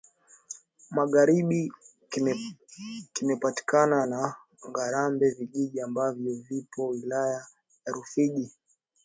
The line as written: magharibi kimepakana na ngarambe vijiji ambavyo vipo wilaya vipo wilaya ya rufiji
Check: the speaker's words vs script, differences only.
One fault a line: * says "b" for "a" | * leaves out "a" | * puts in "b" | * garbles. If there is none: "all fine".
* leaves out "vipo wilaya"